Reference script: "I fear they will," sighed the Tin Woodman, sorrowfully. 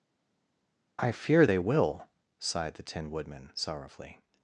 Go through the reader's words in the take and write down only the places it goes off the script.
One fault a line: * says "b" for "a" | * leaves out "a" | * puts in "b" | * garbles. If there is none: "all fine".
all fine